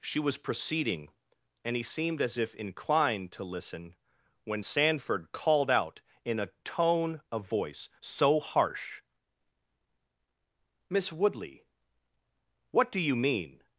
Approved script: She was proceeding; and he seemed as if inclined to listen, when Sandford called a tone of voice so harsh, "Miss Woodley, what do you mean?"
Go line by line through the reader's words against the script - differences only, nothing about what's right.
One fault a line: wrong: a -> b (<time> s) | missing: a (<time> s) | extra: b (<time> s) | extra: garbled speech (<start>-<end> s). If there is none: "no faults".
extra: out in (5.7 s)